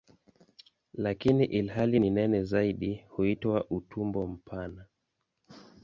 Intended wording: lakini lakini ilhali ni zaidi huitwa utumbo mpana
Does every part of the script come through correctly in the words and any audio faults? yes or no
no